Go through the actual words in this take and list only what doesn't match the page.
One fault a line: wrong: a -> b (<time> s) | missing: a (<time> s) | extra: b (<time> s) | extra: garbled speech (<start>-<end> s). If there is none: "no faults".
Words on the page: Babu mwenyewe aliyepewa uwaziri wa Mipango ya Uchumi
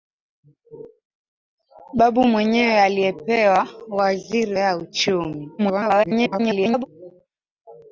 missing: wa Mipango (4.6 s)
extra: garbled speech (5.6-6.9 s)